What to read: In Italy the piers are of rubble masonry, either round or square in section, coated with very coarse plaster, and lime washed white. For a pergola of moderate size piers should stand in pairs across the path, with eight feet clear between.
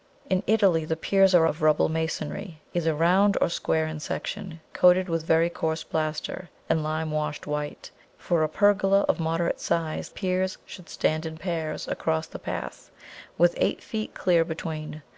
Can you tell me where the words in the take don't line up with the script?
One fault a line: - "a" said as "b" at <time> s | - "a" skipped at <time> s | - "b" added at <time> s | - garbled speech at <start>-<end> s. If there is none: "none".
none